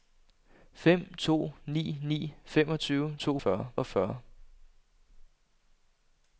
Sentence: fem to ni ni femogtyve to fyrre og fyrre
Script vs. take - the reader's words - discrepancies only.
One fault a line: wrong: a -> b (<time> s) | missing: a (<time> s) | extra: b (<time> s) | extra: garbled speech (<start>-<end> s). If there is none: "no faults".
no faults